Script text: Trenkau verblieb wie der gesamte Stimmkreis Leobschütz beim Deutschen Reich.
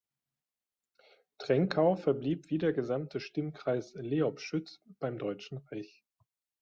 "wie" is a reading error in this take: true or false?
false